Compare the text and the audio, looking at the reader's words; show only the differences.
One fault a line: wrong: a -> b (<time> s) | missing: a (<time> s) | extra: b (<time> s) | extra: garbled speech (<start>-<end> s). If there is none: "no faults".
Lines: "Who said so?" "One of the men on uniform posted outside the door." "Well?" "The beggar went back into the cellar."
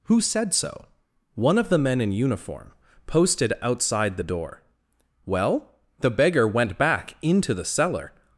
wrong: on -> in (2.0 s)